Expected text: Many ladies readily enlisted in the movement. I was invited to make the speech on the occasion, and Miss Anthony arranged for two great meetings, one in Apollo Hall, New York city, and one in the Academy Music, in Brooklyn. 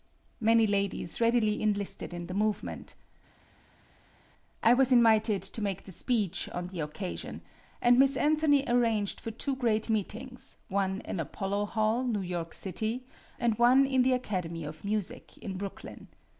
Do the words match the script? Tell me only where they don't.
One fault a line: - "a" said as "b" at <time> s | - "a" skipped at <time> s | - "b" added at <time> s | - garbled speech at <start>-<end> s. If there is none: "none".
- "of" added at 14.6 s